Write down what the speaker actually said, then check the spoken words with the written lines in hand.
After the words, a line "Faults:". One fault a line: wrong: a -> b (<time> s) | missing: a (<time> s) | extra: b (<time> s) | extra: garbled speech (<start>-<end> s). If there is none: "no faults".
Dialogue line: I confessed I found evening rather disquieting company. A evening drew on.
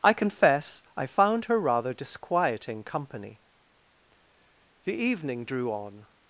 I confess I found her rather disquieting company. The evening drew on.
Faults:
wrong: confessed -> confess (0.1 s)
wrong: evening -> her (1.5 s)
wrong: A -> The (4.8 s)